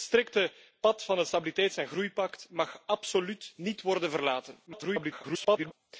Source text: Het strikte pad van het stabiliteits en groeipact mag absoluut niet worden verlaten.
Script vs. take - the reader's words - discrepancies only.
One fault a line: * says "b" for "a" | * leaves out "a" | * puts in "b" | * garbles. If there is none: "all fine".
* garbles